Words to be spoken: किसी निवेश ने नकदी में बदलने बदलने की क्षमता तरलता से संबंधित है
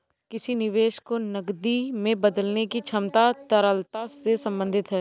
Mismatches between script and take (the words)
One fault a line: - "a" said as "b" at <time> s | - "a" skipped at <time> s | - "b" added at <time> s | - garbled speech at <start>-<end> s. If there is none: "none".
- "ने" said as "को" at 1.1 s
- "बदलने" skipped at 2.6 s